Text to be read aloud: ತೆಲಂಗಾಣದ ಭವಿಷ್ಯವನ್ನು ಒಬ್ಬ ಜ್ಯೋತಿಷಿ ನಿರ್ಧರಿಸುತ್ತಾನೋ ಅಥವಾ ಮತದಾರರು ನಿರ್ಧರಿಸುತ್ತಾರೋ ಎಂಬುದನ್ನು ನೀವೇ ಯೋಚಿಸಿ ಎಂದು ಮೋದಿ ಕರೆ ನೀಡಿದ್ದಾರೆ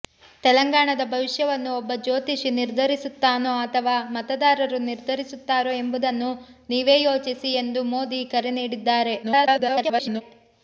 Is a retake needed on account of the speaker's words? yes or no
yes